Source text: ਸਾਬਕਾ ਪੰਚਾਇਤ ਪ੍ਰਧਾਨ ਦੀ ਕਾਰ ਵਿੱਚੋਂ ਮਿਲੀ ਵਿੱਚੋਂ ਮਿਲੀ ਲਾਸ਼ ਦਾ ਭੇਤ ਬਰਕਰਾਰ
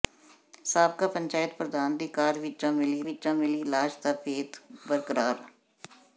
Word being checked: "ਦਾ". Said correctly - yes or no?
yes